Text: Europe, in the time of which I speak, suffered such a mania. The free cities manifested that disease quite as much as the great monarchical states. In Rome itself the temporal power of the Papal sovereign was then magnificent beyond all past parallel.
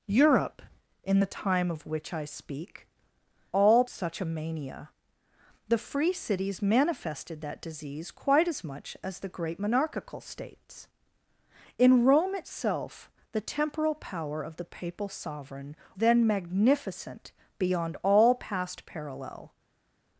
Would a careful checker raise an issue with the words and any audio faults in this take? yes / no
yes